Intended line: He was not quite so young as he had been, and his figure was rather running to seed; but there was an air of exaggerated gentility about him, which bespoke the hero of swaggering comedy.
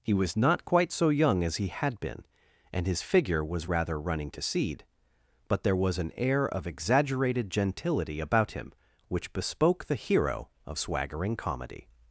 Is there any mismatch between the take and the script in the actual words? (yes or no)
no